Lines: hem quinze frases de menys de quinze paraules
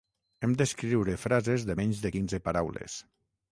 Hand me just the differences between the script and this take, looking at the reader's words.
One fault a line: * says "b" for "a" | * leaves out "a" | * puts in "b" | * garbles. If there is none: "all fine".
* says "d'escriure" for "quinze"